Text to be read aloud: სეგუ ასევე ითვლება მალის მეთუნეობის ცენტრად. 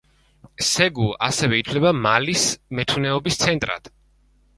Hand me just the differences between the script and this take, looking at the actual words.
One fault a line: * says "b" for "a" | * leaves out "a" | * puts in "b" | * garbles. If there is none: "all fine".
all fine